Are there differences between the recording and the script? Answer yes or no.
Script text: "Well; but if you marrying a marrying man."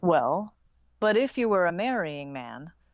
yes